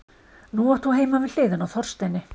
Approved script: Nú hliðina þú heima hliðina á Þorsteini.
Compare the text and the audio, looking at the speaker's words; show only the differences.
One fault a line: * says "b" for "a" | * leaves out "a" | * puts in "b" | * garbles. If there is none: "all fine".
* says "átt" for "hliðina"
* puts in "við"